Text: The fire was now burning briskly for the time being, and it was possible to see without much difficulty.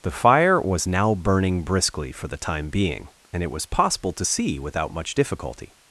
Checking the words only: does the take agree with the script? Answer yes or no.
yes